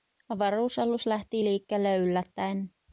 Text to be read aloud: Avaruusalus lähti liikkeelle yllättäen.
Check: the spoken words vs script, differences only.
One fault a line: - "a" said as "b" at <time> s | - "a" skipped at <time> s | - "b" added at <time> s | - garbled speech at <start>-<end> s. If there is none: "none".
none